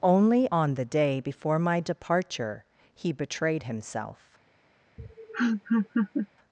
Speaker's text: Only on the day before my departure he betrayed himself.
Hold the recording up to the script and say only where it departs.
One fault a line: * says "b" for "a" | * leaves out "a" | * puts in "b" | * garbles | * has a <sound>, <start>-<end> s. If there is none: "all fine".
* has a laugh, 5.0-6.3 s